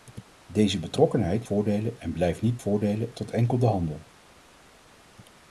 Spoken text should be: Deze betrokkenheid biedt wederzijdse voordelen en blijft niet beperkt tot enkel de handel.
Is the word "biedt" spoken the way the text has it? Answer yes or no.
no